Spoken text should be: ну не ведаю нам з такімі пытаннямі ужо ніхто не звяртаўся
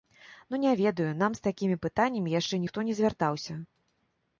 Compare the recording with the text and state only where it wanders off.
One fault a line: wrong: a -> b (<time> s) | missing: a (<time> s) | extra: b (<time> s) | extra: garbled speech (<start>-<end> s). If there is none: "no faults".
wrong: ужо -> яшчэ (2.4 s)